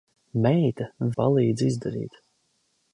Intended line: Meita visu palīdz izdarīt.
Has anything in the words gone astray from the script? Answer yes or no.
yes